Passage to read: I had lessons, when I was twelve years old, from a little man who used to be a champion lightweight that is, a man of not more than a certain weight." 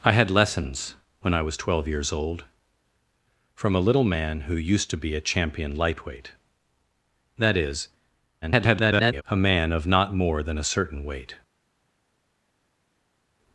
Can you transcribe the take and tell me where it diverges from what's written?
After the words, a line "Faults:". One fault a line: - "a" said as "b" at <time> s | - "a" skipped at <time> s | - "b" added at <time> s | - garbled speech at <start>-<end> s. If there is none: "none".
I had lessons, when I was twelve years old, from a little man who used to be a champion lightweight that is, [garbled] a man of not more than a certain weight."
Faults:
- garbled speech at 8.4-9.2 s